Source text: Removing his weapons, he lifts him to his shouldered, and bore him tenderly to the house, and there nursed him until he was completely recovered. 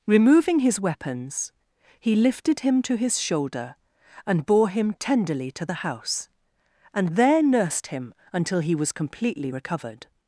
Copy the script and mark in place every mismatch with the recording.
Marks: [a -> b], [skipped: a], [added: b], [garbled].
Removing his weapons, he [lifts -> lifted] him to his [shouldered, -> shoulder] and bore him tenderly to the house, and there nursed him until he was completely recovered.